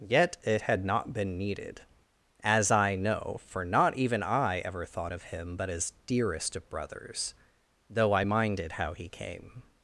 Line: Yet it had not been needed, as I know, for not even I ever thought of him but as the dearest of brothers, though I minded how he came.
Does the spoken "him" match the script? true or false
true